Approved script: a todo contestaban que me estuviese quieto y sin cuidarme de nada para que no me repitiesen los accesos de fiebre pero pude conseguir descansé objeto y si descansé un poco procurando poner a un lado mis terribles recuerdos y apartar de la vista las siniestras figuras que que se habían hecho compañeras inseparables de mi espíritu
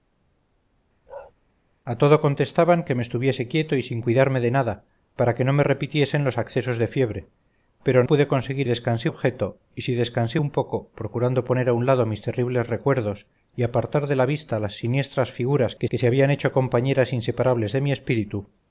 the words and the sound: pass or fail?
fail